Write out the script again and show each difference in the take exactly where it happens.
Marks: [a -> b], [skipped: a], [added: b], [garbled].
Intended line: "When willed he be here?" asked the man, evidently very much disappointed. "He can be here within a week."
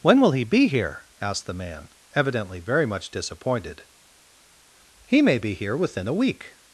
"When [willed -> will] he be here?" asked the man, evidently very much disappointed. "He [can -> may] be here within a week."